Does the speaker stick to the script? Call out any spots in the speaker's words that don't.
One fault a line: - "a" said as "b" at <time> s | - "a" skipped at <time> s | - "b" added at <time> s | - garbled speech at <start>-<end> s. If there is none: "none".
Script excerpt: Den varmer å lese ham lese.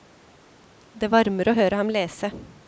- "Den" said as "Det" at 0.9 s
- "lese" said as "høre" at 1.6 s